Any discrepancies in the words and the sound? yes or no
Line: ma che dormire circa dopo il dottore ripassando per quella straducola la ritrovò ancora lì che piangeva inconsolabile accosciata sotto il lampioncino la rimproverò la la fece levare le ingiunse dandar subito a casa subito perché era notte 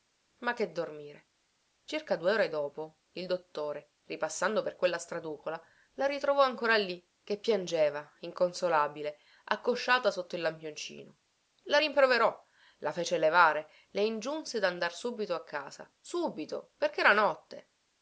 yes